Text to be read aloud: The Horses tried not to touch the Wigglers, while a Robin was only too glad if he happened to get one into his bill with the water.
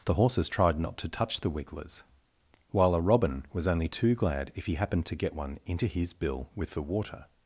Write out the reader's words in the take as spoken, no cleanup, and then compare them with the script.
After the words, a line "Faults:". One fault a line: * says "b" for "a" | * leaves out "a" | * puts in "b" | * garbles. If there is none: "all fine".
The Horses tried not to touch the Wigglers, while a Robin was only too glad if he happened to get one into his bill with the water.
Faults:
all fine